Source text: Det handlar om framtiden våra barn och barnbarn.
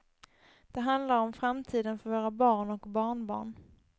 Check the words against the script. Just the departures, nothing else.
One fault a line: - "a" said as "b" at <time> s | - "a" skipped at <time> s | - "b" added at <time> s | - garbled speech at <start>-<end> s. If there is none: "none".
- "för" added at 2.0 s